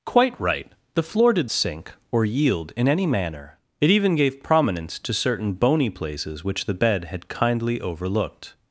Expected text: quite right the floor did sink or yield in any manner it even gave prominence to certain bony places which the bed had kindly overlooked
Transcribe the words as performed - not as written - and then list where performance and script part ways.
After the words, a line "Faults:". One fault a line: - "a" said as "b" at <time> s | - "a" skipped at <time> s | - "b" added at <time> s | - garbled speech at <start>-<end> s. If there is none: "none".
quite right the floor did sink or yield in any manner it even gave prominence to certain bony places which the bed had kindly overlooked
Faults:
none